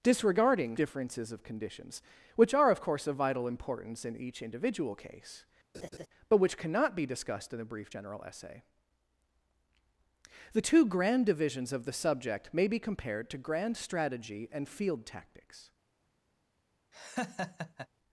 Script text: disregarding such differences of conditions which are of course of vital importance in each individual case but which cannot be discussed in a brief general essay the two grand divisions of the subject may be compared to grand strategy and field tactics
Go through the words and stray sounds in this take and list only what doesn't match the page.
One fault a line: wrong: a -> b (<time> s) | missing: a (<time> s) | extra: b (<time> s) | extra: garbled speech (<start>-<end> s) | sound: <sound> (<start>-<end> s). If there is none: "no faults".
missing: such (0.8 s)
sound: laugh (5.7-6.1 s)
sound: laugh (16.9-17.9 s)